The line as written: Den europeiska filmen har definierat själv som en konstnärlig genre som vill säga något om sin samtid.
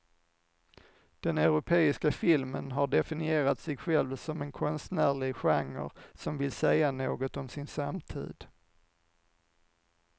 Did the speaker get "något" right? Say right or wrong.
right